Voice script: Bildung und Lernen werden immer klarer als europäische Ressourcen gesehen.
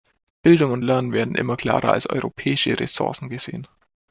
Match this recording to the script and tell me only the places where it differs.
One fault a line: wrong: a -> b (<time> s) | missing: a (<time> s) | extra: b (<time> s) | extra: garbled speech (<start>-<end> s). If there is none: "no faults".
no faults